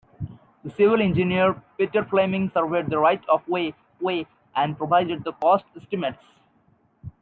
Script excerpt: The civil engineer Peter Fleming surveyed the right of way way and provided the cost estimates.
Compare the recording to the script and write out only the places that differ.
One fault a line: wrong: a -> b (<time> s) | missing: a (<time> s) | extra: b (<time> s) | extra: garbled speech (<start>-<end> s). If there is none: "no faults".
no faults